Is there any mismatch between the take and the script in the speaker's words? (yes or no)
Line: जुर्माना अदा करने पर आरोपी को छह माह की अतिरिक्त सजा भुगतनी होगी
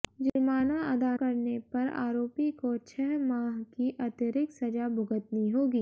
no